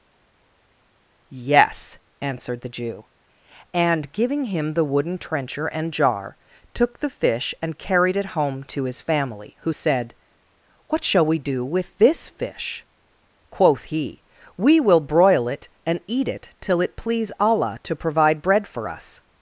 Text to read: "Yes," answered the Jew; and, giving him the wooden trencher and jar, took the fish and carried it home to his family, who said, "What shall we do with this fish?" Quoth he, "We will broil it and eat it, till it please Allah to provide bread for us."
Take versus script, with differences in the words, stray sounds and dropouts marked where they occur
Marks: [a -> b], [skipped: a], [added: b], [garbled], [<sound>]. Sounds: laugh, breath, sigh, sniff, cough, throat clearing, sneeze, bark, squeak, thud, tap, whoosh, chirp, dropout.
"Yes," answered the Jew; and, giving him the wooden trencher and jar, took the fish and carried it home to his family, who said, "What shall we do with this fish?" Quoth he, "We will broil it and eat it, till it please Allah to provide bread for us."